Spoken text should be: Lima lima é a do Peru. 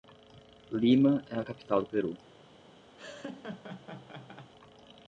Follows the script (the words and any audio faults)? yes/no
no